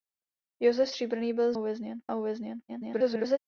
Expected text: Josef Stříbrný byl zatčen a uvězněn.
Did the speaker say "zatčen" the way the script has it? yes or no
no